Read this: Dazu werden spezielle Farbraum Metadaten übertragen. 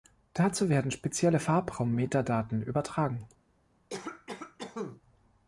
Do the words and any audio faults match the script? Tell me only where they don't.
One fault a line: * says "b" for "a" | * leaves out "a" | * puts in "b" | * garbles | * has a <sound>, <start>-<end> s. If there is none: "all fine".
* has a cough, 3.9-5.0 s